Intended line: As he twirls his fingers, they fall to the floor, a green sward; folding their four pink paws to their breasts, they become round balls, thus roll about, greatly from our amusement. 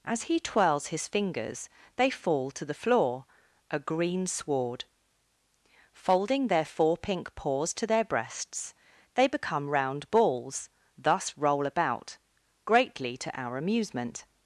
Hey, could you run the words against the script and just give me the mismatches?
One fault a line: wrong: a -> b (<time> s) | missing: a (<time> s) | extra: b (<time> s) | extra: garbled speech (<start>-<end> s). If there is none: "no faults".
wrong: from -> to (13.2 s)